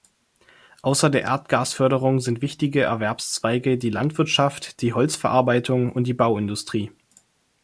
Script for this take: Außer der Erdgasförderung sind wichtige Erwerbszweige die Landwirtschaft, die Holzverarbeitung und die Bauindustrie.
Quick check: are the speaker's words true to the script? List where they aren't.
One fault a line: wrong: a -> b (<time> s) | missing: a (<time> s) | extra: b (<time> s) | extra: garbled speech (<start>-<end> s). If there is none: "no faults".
no faults